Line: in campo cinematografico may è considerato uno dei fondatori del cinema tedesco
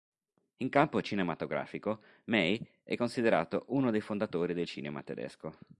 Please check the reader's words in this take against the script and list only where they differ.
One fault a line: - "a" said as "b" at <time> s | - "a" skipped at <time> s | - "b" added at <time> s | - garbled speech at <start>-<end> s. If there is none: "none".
none